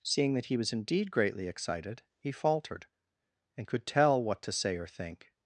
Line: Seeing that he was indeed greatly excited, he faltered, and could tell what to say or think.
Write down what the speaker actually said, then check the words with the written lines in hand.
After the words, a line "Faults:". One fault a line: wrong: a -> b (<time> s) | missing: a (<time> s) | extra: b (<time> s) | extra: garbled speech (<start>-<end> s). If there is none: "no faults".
Seeing that he was indeed greatly excited, he faltered, and could tell what to say or think.
Faults:
no faults